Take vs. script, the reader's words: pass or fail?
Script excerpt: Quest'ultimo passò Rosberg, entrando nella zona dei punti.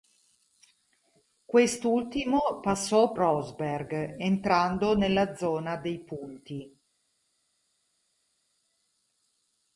pass